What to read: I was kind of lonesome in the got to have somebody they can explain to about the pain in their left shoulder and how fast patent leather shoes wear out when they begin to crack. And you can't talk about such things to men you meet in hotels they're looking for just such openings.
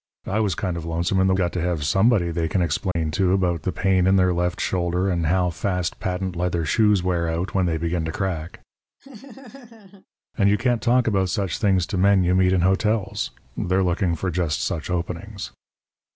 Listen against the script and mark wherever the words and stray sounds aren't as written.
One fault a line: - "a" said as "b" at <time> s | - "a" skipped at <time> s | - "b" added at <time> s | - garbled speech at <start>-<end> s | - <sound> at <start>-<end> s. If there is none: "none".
- dropout at 2.9-3.0 s
- laugh at 9.0-10.1 s